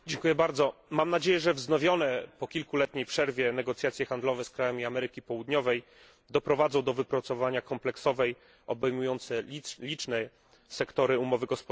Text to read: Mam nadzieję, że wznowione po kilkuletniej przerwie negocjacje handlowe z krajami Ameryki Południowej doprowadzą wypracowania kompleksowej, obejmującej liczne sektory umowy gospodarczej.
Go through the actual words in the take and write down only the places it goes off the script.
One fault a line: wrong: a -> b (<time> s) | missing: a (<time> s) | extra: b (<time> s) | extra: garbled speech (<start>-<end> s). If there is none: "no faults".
extra: do (6.8 s)